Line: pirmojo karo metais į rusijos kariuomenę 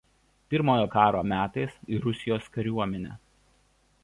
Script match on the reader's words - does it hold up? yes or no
yes